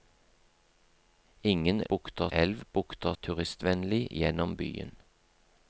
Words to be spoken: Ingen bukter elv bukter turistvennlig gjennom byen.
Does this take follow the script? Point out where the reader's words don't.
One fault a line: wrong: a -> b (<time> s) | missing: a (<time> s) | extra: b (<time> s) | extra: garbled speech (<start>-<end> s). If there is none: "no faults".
no faults